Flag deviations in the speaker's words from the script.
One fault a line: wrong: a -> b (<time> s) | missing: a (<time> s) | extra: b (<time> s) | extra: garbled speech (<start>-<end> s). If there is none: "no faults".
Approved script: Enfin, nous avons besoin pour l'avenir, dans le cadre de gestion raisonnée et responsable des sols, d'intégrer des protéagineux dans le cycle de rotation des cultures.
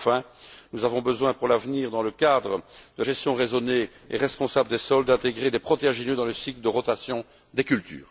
no faults